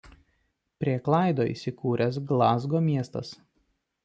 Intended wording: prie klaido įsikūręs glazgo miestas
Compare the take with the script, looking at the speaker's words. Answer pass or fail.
pass